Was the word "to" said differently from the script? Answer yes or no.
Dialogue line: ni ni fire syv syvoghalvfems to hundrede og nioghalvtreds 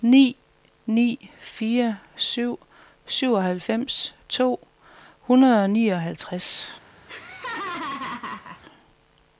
no